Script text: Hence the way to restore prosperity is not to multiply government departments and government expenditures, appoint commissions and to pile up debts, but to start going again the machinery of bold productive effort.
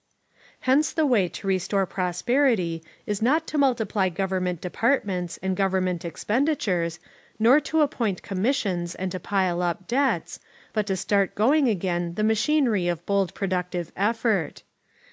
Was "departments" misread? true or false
false